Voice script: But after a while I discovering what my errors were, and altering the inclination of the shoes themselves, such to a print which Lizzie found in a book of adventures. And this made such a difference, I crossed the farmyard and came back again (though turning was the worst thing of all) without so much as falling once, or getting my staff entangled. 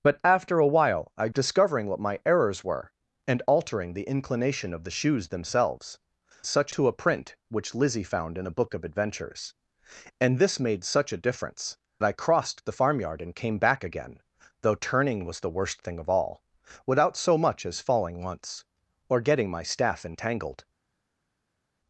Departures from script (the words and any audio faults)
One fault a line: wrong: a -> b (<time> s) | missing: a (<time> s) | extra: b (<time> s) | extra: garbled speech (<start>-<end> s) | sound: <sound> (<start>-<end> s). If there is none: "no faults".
no faults